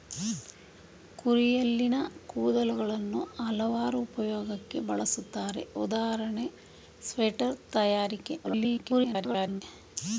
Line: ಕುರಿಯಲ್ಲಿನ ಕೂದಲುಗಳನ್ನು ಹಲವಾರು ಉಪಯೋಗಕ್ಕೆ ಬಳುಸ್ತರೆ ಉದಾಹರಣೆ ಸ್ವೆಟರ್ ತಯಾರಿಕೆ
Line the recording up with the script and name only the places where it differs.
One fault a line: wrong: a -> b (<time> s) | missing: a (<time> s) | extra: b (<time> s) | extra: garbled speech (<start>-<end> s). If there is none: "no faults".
extra: garbled speech (8.4-9.6 s)